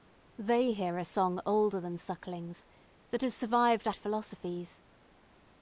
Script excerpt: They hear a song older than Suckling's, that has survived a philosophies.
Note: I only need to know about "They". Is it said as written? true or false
true